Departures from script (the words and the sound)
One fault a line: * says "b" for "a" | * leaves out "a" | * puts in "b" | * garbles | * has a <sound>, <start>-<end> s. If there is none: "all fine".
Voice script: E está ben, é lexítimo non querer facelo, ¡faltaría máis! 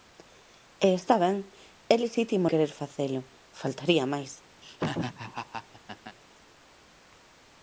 * leaves out "non"
* has a laugh, 4.6-6.2 s